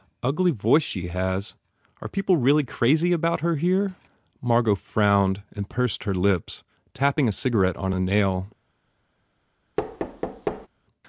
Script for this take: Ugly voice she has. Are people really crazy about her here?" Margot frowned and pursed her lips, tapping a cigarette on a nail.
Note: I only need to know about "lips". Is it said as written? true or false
true